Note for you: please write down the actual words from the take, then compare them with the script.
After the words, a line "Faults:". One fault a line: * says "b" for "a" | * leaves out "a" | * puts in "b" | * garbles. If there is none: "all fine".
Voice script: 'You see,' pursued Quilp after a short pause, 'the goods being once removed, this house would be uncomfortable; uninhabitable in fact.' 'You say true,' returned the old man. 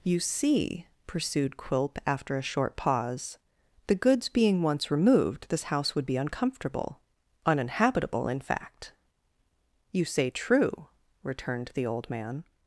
'You see,' pursued Quilp after a short pause, 'the goods being once removed, this house would be uncomfortable; uninhabitable in fact.' 'You say true,' returned the old man.
Faults:
all fine